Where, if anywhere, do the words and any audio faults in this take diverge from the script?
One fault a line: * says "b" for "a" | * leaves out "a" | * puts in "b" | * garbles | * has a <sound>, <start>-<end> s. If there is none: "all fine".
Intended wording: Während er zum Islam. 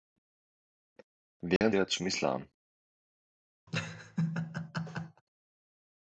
* has a dropout, 1.6-1.6 s
* has a laugh, 3.7-5.2 s